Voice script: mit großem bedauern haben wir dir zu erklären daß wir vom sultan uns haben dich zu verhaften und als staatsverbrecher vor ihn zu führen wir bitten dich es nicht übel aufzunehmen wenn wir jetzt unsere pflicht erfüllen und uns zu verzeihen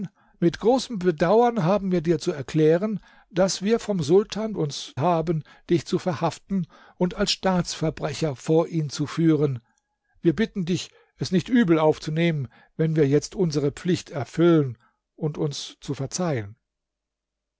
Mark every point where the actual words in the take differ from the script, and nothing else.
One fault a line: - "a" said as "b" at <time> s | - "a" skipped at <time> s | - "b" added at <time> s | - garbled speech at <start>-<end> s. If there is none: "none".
none